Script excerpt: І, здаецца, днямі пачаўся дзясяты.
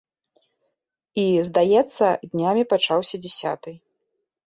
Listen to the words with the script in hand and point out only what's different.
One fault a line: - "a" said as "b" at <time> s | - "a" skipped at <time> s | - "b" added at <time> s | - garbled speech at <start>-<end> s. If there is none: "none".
none